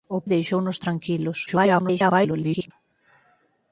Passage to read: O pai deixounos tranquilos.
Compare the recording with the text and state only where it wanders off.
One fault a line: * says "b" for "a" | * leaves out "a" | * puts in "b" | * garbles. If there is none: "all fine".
* leaves out "pai"
* garbles